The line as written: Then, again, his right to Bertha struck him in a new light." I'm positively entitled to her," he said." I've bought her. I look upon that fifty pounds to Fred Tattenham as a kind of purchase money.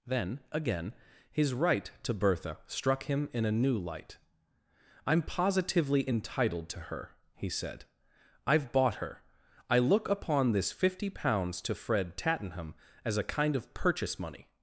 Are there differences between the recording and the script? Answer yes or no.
yes